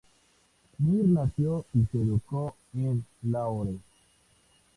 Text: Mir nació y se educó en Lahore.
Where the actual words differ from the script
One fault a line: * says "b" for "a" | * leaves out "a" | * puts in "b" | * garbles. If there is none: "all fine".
all fine